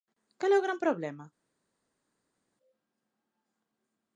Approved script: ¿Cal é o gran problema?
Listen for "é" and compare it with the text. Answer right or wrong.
right